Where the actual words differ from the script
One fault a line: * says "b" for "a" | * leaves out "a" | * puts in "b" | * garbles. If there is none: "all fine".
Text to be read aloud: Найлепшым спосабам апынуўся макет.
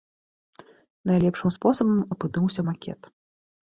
all fine